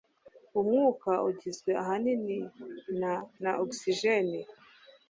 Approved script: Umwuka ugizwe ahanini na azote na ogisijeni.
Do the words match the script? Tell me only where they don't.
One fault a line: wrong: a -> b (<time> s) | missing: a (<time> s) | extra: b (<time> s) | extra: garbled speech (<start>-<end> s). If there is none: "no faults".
missing: azote (3.1 s)